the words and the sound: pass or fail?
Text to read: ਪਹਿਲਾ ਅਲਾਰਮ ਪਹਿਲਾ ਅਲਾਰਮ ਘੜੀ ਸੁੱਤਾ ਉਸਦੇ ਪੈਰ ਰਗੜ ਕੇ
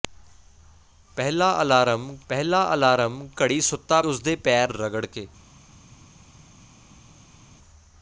pass